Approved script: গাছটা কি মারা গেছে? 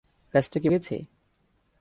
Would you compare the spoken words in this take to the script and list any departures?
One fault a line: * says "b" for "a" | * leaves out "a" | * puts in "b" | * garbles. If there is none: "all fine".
* leaves out "মারা"